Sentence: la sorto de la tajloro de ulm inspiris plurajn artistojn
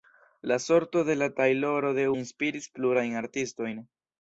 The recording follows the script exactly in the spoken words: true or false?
false